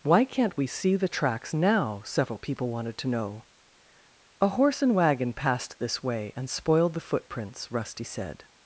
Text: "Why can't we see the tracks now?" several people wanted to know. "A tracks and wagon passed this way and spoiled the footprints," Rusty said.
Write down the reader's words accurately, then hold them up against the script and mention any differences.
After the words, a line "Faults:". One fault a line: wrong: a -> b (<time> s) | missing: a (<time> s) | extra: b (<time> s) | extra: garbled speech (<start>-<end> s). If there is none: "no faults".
"Why can't we see the tracks now?" several people wanted to know. "A horse and wagon passed this way and spoiled the footprints," Rusty said.
Faults:
wrong: tracks -> horse (4.5 s)